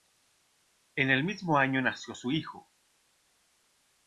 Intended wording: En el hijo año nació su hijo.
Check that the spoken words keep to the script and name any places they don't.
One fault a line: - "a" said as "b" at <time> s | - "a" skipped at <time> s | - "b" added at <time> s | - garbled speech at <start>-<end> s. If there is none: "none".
- "hijo" said as "mismo" at 1.2 s